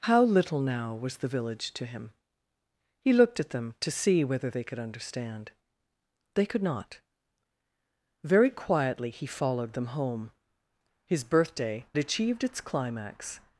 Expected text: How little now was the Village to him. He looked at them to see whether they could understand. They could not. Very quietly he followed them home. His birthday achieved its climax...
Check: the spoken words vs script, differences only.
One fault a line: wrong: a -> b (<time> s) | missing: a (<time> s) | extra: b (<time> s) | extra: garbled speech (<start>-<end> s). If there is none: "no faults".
no faults